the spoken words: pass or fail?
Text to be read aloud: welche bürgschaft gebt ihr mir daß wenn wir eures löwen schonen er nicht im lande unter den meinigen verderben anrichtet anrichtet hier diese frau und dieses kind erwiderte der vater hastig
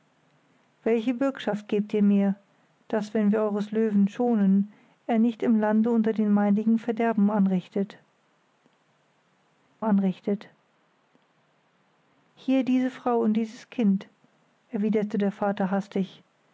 pass